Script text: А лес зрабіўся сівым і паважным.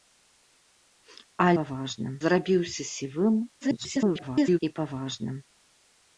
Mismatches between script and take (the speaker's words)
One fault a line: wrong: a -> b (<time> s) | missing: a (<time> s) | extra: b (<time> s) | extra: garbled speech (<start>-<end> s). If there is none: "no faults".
wrong: лес -> паважным (1.6 s)
extra: garbled speech (3.6-4.6 s)